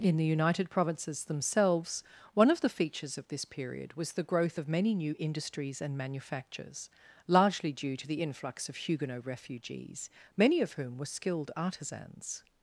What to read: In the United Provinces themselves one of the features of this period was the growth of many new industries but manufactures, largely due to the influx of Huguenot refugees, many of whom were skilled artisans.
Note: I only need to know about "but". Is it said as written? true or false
false